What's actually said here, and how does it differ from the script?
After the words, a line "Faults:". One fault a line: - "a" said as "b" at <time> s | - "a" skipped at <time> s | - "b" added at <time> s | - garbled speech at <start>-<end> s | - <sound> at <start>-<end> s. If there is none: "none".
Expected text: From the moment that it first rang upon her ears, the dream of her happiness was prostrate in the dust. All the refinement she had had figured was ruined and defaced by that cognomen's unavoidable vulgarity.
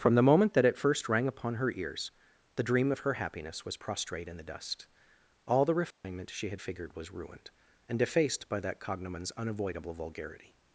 From the moment that it first rang upon her ears, the dream of her happiness was prostrate in the dust. All the refinement she had figured was ruined and defaced by that cognomen's unavoidable vulgarity.
Faults:
- dropout at 5.9-6.0 s
- "had" skipped at 6.6 s